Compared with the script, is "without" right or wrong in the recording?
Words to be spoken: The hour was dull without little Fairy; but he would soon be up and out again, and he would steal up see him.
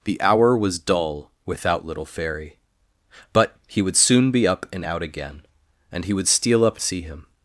right